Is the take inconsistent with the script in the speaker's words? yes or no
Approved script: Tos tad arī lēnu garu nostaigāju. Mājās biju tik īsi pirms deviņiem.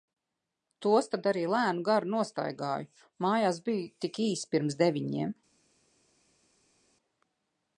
no